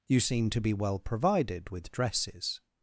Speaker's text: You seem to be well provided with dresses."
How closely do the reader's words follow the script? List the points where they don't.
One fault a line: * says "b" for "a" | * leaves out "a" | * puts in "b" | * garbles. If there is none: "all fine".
all fine